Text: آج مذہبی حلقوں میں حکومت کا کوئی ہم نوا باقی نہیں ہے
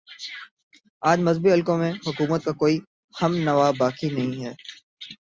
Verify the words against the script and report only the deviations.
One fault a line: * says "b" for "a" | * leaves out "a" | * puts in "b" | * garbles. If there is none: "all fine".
all fine